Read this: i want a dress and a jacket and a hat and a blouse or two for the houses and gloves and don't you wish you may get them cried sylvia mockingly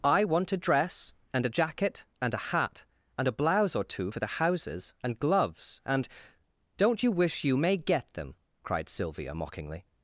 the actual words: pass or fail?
pass